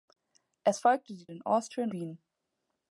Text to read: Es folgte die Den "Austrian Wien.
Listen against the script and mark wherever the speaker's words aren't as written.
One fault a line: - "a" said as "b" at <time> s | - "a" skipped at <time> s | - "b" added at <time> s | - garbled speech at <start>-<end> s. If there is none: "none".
none